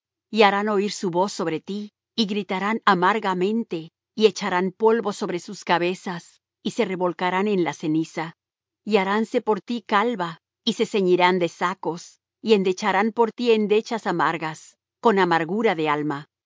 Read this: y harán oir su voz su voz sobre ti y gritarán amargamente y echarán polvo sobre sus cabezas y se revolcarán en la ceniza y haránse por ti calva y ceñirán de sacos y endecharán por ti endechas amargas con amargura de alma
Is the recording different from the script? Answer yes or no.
yes